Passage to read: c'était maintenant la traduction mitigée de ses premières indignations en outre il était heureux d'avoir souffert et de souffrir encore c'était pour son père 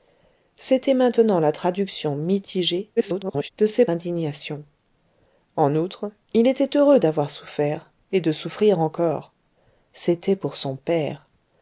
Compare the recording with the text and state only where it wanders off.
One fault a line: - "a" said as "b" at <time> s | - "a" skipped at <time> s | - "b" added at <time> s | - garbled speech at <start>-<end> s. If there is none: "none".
- garbled speech at 3.0-3.5 s
- "premières" skipped at 3.9 s